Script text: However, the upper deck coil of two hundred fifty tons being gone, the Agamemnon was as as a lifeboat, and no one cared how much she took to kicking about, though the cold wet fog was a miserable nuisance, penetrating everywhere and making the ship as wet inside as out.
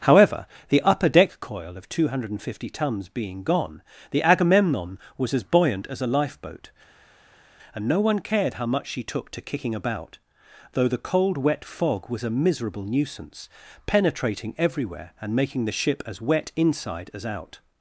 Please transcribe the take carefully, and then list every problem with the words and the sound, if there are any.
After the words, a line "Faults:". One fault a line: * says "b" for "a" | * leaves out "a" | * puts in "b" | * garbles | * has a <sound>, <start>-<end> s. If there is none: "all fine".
However, the upper deck coil of two hundred fifty tons being gone, the Agamemnon was as buoyant as a lifeboat, and no one cared how much she took to kicking about, though the cold wet fog was a miserable nuisance, penetrating everywhere and making the ship as wet inside as out.
Faults:
* puts in "buoyant"